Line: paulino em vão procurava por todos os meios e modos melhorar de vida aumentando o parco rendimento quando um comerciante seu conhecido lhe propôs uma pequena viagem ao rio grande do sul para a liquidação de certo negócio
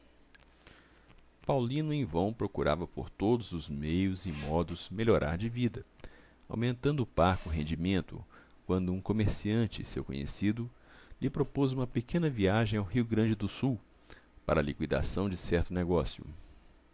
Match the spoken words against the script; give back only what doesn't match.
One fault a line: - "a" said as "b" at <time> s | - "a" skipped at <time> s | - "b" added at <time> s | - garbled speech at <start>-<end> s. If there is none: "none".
none